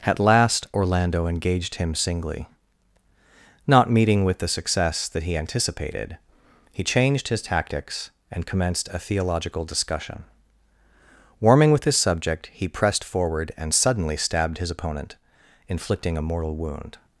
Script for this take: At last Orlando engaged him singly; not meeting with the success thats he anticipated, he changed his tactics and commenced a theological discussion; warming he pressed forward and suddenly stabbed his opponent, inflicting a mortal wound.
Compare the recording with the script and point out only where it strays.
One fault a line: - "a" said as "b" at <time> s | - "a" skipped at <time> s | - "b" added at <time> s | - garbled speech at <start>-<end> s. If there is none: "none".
- "thats" said as "that" at 5.1 s
- "with his subject" added at 11.7 s